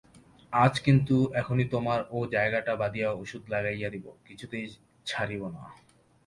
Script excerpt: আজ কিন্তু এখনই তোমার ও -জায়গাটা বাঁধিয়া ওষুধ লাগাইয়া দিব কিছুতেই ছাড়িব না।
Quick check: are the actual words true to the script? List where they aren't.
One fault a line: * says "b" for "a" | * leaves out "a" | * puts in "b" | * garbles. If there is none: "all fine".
all fine